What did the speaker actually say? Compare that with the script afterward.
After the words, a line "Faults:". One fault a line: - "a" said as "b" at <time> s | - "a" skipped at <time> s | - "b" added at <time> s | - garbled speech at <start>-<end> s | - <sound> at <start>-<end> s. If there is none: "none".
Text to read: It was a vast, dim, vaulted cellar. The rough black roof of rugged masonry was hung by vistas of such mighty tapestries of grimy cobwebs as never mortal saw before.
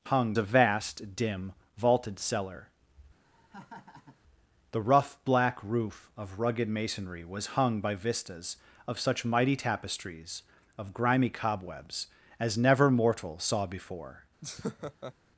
It hung a vast, dim, vaulted cellar. The rough black roof of rugged masonry was hung by vistas of such mighty tapestries of grimy cobwebs as never mortal saw before.
Faults:
- "was" said as "hung" at 0.1 s
- laugh at 3.2-4.2 s
- laugh at 14.4-15.1 s